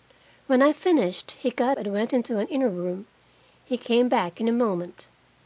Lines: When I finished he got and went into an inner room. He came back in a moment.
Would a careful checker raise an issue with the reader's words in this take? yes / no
no